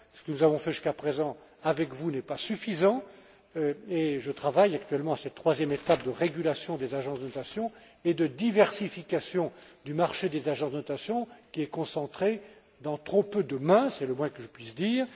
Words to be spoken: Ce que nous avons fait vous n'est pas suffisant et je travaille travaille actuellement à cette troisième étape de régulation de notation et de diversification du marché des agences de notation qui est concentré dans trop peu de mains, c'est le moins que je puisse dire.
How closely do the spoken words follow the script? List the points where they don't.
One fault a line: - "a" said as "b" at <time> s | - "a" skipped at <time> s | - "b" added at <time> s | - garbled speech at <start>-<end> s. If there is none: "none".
- "jusqu'à présent avec" added at 0.7 s
- "travaille" skipped at 4.8 s
- "des agences" added at 6.8 s